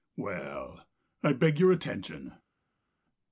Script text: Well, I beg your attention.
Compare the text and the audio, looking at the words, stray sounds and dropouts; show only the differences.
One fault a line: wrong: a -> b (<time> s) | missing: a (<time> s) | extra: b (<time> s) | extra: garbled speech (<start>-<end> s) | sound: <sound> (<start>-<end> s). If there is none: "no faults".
no faults